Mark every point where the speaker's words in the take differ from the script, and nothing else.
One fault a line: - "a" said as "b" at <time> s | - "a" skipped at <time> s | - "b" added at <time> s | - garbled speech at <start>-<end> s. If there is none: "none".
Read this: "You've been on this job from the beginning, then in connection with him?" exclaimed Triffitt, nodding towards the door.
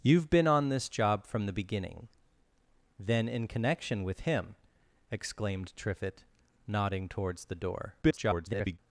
- garbled speech at 8.0-8.8 s